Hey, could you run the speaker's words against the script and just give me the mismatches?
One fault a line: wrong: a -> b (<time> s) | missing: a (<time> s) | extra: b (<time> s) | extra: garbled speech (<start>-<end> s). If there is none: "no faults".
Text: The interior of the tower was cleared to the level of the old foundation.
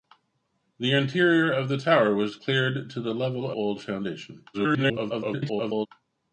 missing: of the (3.5 s)
extra: garbled speech (4.5-5.9 s)